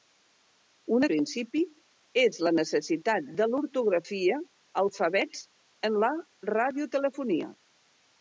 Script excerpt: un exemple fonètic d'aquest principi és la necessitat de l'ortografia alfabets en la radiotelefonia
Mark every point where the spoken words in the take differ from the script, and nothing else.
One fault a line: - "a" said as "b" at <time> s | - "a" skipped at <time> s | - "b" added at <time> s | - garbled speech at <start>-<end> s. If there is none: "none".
- "exemple fonètic d'aquest" skipped at 1.0 s